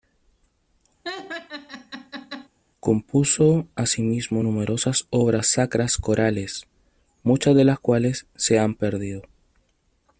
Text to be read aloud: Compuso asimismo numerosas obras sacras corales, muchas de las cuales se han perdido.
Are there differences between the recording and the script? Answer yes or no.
no